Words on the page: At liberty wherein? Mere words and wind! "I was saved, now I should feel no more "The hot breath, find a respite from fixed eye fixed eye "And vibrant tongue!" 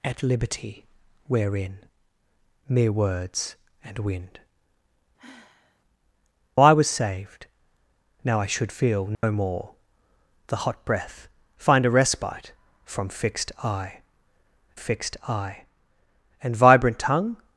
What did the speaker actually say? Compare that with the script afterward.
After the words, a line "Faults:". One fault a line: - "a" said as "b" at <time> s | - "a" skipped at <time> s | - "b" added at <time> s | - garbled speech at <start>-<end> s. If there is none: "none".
At liberty wherein? Mere words and wind! "I was saved, now I should feel no more "The hot breath, find a respite from fixed eye fixed eye "And vibrant tongue!"
Faults:
none